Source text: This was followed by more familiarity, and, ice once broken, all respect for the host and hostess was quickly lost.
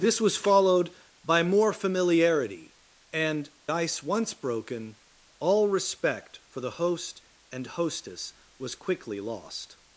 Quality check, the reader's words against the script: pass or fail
pass